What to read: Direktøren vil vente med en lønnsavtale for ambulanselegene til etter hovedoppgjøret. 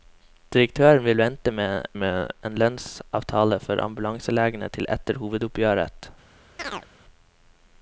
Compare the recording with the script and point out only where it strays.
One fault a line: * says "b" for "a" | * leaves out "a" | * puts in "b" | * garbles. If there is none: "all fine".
* puts in "med"